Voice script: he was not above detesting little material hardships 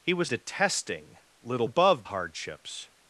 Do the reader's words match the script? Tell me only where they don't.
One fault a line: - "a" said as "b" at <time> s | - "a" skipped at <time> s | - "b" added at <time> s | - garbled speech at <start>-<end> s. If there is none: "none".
- "not above" skipped at 0.3 s
- "material" said as "above" at 1.6 s